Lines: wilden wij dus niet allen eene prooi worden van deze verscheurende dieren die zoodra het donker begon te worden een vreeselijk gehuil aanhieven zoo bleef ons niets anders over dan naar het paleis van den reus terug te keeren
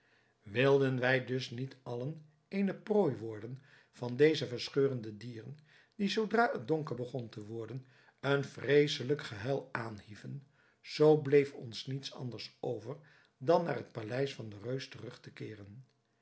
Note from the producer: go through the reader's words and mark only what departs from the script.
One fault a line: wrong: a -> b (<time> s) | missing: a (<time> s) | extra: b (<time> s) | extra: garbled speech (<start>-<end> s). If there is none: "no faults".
no faults